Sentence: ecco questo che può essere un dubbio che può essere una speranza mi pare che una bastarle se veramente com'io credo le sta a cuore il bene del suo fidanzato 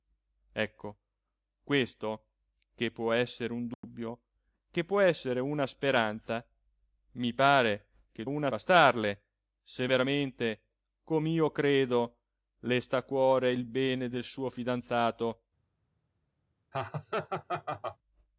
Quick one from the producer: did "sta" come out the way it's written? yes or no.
yes